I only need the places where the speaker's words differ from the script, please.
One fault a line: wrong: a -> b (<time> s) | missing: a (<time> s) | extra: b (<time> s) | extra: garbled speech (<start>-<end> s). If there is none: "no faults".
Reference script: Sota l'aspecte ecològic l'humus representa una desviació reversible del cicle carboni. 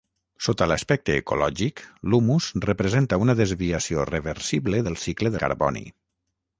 no faults